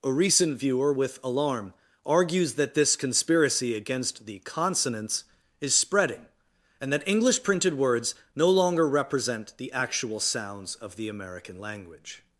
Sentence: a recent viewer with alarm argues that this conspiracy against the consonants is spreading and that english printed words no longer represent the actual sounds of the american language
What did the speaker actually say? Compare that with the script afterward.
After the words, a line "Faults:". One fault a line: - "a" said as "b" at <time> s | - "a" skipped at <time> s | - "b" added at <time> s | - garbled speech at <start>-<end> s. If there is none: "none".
a recent viewer with alarm argues that this conspiracy against the consonants is spreading and that english printed words no longer represent the actual sounds of the american language
Faults:
none